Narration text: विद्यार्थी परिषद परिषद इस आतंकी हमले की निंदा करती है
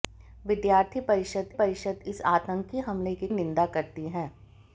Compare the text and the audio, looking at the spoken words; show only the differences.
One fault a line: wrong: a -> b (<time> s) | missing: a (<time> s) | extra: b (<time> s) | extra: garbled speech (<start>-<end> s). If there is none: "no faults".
no faults